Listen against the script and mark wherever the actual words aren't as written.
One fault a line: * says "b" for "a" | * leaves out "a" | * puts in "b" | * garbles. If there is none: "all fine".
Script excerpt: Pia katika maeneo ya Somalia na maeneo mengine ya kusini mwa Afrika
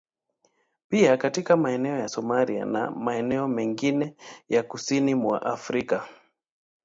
all fine